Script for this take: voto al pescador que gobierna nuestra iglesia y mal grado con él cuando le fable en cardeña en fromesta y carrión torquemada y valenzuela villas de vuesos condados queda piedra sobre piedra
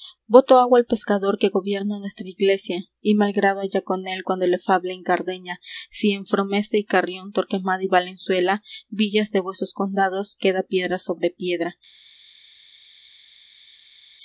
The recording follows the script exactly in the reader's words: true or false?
false